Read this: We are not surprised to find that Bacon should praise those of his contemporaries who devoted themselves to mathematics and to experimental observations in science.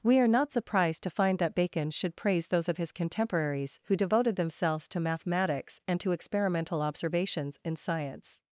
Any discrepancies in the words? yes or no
no